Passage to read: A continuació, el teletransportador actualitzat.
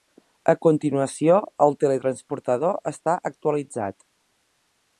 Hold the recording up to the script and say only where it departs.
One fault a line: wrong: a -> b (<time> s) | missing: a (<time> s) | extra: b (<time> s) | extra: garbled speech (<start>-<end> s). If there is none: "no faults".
extra: està (2.9 s)